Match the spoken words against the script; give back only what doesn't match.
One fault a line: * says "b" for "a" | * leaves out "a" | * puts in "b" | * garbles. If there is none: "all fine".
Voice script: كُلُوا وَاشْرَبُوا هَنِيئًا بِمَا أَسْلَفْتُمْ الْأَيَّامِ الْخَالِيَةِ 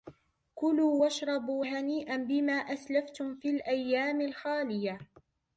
* puts in "فِي"